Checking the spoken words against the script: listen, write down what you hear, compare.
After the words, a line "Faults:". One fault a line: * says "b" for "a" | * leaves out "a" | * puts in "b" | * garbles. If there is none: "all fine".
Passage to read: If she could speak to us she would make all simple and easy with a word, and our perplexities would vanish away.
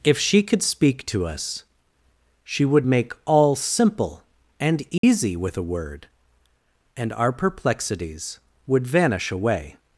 If she could speak to us she would make all simple and easy with a word, and our perplexities would vanish away.
Faults:
all fine